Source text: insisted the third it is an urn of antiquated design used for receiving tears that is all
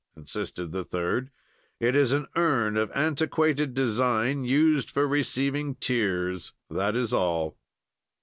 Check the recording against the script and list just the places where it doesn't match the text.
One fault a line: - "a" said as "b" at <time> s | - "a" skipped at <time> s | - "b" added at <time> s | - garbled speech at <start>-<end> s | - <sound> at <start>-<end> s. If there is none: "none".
none